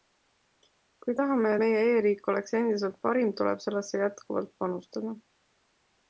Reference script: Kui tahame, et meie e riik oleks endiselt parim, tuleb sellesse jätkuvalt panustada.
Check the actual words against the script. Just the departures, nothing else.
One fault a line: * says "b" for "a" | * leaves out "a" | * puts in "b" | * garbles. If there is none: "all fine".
* leaves out "et"